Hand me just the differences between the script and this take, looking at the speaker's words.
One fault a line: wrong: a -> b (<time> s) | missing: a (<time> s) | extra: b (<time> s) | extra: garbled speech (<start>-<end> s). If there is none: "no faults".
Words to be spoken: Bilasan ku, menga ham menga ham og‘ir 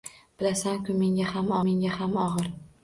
no faults